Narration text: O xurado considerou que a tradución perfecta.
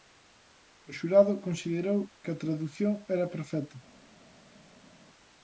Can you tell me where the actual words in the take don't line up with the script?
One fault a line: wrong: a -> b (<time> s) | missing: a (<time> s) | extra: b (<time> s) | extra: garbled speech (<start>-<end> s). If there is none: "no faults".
extra: era (3.1 s)